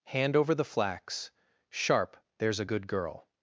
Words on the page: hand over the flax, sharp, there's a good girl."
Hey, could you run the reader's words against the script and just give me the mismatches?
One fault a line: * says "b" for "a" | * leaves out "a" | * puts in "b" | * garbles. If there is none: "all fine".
all fine